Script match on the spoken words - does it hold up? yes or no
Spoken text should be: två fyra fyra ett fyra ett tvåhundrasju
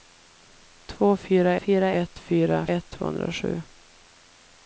yes